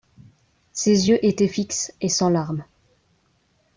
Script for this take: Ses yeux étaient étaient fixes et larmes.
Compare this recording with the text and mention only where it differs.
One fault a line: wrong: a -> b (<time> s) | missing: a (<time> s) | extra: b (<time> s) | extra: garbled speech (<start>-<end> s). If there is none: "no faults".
missing: étaient (1.5 s)
extra: sans (2.1 s)